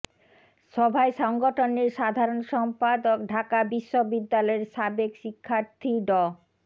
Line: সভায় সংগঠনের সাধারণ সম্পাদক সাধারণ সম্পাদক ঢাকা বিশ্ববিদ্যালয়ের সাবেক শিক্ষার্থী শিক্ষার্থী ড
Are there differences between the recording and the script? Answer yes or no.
yes